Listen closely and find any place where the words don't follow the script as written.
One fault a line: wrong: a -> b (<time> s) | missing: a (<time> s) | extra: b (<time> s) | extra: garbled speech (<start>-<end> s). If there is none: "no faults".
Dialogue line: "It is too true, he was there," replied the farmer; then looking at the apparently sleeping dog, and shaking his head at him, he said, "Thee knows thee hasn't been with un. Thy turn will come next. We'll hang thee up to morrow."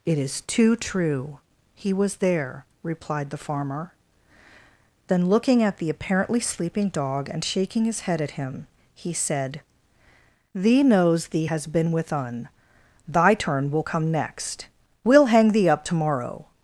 wrong: hasn't -> has (11.4 s)